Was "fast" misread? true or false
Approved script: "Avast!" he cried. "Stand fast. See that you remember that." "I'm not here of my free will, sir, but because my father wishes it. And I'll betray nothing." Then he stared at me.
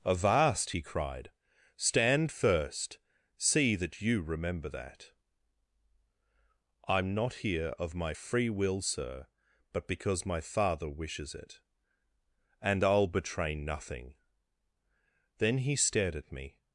true